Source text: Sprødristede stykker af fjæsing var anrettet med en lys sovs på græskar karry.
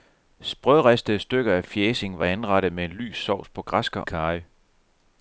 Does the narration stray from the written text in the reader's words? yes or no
no